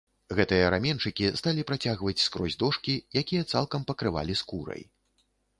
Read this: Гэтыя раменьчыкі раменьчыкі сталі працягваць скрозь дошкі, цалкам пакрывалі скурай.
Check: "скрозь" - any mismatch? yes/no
no